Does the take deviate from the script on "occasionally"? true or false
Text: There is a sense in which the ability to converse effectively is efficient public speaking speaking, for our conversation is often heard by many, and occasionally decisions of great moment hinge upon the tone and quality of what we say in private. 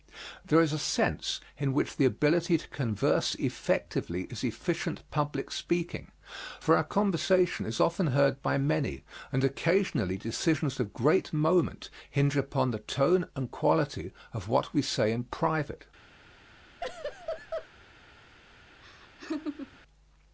false